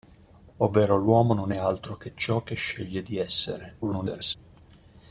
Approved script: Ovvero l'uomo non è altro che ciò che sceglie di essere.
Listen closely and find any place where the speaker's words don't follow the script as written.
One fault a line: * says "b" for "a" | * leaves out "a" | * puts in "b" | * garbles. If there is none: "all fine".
* garbles